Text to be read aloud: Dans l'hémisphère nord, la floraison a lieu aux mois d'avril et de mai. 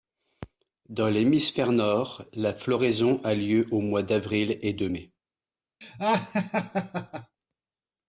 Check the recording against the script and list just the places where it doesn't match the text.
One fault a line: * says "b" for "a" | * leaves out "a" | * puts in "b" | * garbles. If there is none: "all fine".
all fine